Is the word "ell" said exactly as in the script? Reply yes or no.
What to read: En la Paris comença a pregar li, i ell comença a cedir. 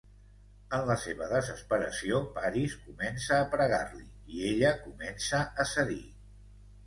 no